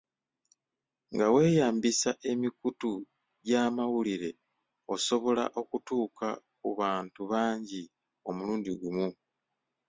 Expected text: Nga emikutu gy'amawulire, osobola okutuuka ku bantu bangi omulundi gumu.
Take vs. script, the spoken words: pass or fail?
fail